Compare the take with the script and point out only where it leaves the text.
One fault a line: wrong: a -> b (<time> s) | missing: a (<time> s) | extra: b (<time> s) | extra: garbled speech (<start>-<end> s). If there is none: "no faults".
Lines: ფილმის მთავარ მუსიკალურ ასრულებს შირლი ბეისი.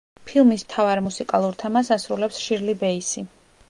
extra: თემას (1.6 s)